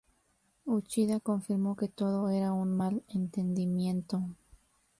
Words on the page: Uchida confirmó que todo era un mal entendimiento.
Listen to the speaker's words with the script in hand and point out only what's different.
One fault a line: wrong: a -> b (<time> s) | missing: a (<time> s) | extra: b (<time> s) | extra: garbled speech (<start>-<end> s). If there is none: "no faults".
no faults